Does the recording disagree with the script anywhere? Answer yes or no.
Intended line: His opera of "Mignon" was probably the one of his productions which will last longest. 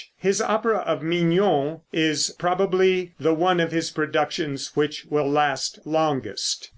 yes